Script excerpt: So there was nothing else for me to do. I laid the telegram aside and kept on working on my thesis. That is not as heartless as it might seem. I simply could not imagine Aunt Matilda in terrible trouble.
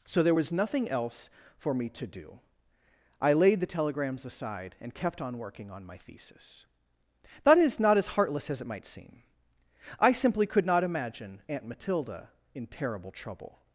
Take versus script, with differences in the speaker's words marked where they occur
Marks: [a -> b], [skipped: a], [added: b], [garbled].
So there was nothing else for me to do. I laid the [telegram -> telegrams] aside and kept on working on my thesis. That is not as heartless as it might seem. I simply could not imagine Aunt Matilda in terrible trouble.